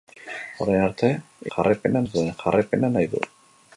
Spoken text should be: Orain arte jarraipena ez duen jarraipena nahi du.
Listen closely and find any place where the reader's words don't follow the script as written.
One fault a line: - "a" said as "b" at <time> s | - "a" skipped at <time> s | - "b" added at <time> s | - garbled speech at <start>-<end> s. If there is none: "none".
none